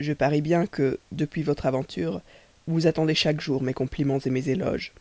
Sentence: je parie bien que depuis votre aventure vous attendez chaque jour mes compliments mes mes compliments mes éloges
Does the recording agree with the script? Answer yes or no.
no